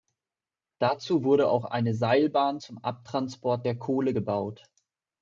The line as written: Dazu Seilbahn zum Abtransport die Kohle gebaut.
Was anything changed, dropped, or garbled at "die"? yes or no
yes